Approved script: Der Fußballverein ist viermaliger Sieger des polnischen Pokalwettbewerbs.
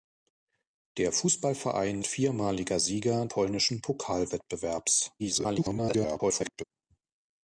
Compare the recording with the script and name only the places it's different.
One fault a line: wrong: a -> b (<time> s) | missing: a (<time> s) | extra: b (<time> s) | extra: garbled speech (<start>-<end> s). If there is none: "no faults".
missing: ist (2.0 s)
missing: des (3.3 s)
extra: garbled speech (5.2-6.6 s)